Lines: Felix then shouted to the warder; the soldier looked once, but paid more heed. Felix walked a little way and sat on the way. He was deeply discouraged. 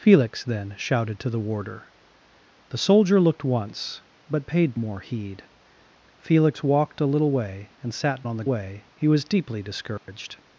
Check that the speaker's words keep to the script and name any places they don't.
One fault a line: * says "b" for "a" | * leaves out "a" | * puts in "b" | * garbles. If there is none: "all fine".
all fine